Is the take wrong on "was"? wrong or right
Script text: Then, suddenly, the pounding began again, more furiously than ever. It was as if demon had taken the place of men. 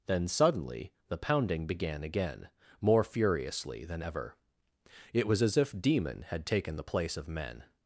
right